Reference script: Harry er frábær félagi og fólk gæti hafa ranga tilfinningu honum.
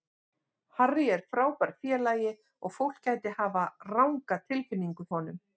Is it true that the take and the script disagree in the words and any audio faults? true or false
false